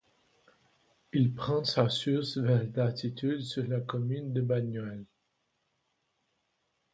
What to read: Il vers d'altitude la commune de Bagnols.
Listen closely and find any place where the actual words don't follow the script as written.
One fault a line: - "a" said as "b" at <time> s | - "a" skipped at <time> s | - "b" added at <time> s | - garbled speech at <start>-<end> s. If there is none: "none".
- "prend sa source" added at 1.4 s
- "sur" added at 3.4 s